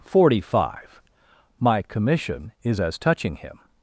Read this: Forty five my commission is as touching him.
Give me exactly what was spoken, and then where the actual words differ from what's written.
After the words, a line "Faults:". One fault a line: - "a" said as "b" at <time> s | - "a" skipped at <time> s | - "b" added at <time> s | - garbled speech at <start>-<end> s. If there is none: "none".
Forty five my commission is as touching him.
Faults:
none